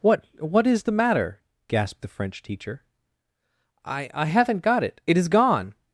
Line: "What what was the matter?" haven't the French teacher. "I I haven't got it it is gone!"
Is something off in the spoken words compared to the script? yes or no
yes